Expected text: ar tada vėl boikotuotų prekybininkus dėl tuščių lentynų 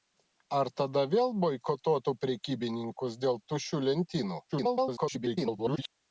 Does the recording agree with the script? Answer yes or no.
no